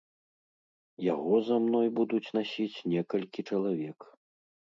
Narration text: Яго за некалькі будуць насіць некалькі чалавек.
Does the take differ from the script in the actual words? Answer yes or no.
yes